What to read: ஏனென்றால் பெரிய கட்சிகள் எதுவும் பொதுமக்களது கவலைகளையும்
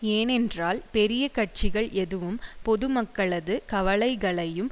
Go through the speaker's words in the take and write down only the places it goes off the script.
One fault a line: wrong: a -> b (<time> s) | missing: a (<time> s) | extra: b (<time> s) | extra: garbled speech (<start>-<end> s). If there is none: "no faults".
no faults